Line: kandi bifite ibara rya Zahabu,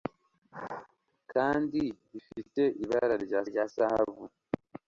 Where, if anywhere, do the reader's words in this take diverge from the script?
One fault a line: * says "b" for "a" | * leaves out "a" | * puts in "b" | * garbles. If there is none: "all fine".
* puts in "rya"